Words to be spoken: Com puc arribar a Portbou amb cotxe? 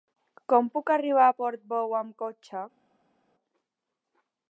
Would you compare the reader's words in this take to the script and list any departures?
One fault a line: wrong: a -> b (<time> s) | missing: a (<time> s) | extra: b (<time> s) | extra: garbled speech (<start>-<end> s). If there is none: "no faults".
no faults